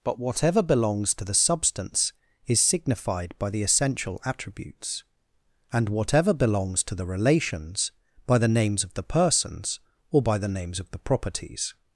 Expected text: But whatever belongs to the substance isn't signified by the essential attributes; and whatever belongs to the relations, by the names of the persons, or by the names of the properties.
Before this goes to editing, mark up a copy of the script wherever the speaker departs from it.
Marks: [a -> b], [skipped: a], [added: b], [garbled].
But whatever belongs to the substance [isn't -> is] signified by the essential attributes; and whatever belongs to the relations, by the names of the persons, or by the names of the properties.